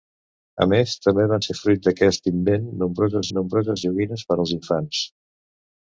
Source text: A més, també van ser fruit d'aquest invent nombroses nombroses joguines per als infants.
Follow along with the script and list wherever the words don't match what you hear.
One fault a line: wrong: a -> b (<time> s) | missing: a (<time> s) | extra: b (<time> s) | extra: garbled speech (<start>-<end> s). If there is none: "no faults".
no faults